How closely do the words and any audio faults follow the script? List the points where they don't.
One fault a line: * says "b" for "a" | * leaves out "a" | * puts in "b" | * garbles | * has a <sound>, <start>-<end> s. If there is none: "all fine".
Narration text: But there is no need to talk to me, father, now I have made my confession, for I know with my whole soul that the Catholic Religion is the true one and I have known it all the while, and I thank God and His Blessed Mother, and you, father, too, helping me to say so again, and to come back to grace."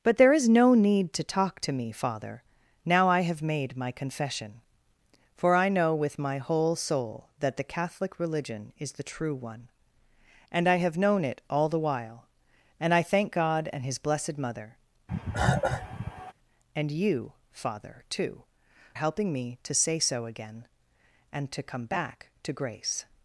* has a cough, 15.1-16.3 s